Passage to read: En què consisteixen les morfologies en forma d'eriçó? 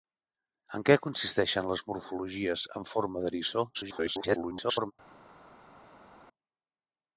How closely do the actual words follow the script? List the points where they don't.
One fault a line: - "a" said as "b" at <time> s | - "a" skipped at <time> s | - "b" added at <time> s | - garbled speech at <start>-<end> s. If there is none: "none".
- garbled speech at 3.7-4.9 s